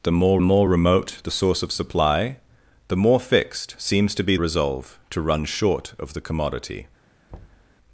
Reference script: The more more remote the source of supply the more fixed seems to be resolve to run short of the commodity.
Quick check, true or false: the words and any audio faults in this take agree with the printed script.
false